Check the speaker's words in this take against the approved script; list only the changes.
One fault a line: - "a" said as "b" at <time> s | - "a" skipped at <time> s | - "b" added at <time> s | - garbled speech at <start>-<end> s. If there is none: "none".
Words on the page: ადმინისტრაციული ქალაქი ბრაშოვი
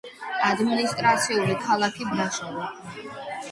none